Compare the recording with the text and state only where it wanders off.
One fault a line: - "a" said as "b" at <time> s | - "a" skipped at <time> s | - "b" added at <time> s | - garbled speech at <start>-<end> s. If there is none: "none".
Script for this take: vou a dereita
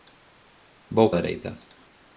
none